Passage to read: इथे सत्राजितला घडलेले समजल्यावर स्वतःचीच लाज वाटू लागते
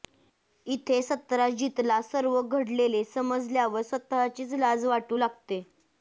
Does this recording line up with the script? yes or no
no